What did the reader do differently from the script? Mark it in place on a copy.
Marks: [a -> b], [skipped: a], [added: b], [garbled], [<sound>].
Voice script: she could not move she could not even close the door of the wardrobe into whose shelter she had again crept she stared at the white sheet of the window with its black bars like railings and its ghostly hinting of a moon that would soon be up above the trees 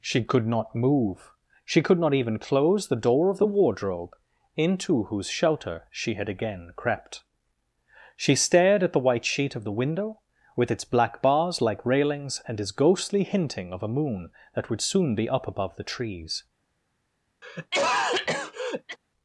she could not move she could not even close the door of the wardrobe into whose shelter she had again crept she stared at the white sheet of the window with its black bars like railings and its ghostly hinting of a moon that would soon be up above the trees [cough]